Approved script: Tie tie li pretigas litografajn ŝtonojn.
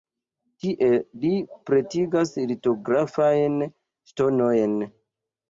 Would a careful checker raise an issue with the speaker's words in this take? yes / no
yes